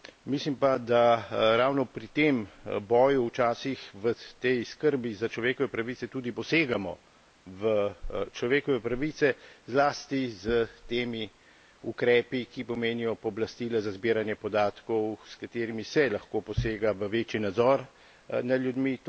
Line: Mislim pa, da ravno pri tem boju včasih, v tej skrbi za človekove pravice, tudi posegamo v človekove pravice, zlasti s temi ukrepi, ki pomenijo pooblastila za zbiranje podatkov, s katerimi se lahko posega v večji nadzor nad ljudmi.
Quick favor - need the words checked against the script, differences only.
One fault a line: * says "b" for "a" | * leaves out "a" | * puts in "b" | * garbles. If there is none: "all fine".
all fine